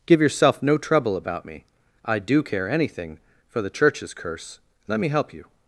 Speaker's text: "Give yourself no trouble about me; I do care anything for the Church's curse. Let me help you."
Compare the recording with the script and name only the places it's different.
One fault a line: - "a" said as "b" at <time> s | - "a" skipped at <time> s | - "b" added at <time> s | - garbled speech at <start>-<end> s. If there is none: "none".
none